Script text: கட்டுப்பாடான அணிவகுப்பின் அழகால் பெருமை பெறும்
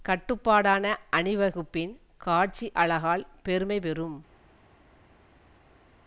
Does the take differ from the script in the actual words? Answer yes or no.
yes